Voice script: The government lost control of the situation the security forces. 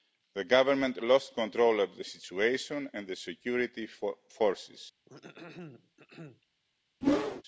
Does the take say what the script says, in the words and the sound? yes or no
no